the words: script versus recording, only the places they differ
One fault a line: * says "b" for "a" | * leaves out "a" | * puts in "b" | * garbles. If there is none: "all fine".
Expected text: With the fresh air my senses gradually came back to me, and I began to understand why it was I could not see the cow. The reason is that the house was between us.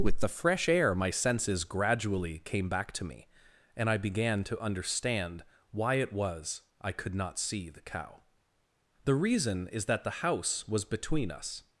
all fine